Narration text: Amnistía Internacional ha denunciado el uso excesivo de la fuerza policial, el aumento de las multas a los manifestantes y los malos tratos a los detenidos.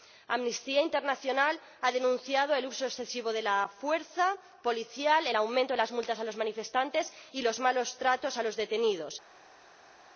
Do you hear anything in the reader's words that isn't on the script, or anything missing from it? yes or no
no